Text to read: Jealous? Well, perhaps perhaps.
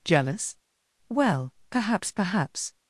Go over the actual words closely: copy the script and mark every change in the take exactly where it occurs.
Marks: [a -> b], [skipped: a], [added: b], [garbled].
Jealous? Well, perhaps perhaps.